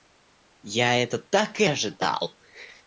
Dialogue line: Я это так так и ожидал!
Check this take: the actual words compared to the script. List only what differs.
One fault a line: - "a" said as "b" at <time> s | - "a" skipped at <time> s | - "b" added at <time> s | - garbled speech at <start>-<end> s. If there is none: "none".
- "так" skipped at 1.6 s